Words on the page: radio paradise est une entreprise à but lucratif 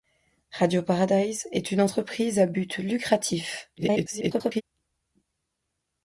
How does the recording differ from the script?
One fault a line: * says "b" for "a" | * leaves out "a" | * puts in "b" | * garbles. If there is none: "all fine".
* garbles